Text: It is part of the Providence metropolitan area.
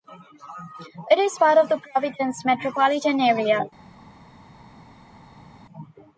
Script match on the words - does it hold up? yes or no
yes